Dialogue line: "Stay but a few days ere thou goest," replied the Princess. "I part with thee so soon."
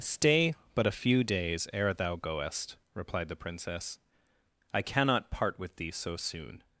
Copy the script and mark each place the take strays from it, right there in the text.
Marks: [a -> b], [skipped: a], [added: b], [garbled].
"Stay but a few days ere thou goest," replied the Princess. "I [added: cannot] part with thee so soon."